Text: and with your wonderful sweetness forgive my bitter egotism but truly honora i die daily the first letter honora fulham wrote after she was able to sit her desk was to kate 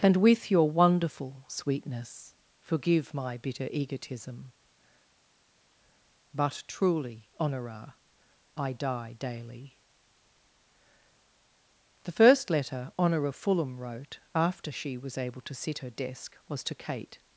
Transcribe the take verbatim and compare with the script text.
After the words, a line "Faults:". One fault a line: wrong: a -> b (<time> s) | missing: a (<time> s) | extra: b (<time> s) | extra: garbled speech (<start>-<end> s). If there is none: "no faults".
and with your wonderful sweetness forgive my bitter egotism but truly honora i die daily the first letter honora fulham wrote after she was able to sit her desk was to kate
Faults:
no faults